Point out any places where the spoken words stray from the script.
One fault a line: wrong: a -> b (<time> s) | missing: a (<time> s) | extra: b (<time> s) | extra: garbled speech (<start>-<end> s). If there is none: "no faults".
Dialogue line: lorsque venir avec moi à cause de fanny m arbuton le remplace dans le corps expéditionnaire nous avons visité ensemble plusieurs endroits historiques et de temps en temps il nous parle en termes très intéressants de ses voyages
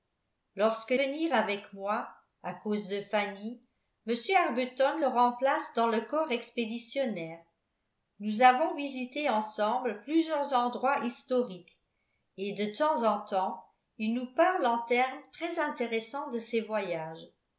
no faults